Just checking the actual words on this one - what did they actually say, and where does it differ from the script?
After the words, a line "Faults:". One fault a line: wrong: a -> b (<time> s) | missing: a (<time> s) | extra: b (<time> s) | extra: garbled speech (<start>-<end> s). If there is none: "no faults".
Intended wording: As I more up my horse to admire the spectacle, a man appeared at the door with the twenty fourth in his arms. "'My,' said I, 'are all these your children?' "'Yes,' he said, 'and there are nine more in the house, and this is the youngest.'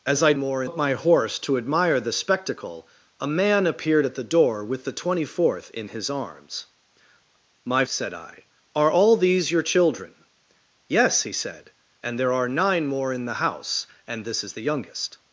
As I more up my horse to admire the spectacle, a man appeared at the door with the twenty fourth in his arms. "'My,' said I, 'are all these your children?' "'Yes,' he said, 'and there are nine more in the house, and this is the youngest.'
Faults:
no faults